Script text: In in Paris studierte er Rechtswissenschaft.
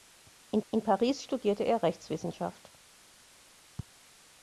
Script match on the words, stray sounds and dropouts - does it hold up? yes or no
yes